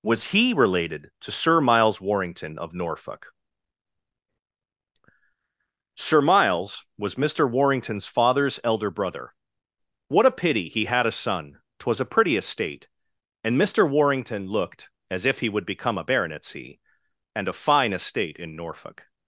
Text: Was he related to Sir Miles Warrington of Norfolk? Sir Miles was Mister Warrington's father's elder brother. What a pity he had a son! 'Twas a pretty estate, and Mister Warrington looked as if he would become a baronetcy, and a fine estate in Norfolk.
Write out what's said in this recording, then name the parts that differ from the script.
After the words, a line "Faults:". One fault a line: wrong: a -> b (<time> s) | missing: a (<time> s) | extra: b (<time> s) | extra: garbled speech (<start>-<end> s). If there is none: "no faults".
Was he related to Sir Miles Warrington of Norfolk? Sir Miles was Mister Warrington's father's elder brother. What a pity he had a son! 'Twas a pretty estate, and Mister Warrington looked as if he would become a baronetcy, and a fine estate in Norfolk.
Faults:
no faults